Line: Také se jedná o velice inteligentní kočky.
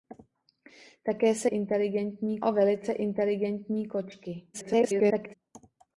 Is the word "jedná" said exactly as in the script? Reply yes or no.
no